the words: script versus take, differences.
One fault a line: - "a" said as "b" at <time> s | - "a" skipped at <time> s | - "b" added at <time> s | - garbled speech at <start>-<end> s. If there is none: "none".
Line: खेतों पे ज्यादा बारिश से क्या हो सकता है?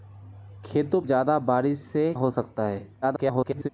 - "पे" skipped at 1.0 s
- "क्या" skipped at 2.1 s
- garbled speech at 3.0-3.7 s